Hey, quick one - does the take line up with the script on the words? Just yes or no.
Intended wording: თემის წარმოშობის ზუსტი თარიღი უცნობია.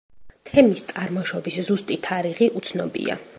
yes